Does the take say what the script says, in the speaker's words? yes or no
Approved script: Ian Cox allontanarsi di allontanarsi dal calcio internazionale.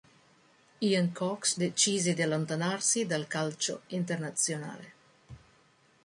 no